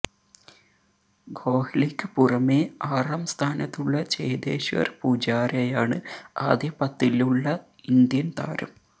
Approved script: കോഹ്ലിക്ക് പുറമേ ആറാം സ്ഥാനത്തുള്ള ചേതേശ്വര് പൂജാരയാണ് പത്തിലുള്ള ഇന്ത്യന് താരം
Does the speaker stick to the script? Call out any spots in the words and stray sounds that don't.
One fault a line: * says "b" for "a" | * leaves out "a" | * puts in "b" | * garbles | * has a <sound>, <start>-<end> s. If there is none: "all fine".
* puts in "ആദ്യ"